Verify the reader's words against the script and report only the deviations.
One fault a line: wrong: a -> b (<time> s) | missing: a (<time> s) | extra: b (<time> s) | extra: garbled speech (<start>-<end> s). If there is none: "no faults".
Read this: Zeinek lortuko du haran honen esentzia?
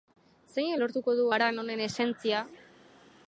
no faults